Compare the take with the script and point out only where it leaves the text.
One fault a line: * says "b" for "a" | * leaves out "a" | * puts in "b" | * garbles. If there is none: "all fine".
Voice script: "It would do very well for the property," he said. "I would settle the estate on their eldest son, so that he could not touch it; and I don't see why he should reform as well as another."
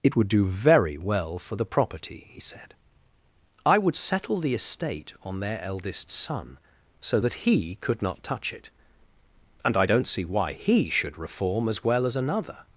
all fine